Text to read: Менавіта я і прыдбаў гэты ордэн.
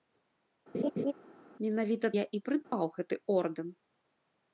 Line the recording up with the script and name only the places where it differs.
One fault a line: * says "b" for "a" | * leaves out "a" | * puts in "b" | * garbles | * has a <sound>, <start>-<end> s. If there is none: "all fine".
* has a laugh, 0.7-1.1 s
* has a dropout, 2.6-2.7 s